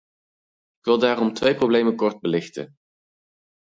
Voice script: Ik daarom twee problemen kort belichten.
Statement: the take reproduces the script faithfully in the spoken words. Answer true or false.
false